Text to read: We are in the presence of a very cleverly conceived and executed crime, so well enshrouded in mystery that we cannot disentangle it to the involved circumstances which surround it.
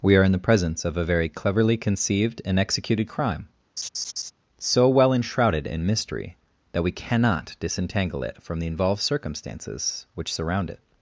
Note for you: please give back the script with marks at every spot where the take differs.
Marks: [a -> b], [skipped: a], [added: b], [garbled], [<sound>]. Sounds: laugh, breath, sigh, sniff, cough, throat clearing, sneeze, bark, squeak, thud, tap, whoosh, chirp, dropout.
We are in the presence of a very cleverly conceived and executed crime, [laugh] so well enshrouded in mystery that we cannot disentangle it [to -> from] the involved circumstances which surround it.